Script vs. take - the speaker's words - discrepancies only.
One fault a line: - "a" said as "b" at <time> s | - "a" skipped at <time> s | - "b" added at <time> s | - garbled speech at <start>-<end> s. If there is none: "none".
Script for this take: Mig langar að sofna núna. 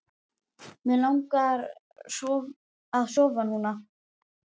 none